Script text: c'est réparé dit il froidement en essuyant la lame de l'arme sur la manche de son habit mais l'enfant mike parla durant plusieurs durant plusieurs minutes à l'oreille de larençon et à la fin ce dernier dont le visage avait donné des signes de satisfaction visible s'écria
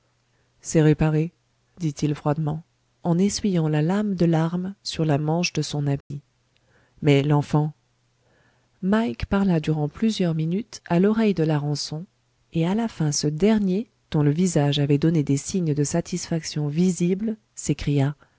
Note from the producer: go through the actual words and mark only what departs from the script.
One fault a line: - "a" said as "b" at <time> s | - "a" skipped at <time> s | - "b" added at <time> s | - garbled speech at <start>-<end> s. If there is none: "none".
- "durant plusieurs" skipped at 10.4 s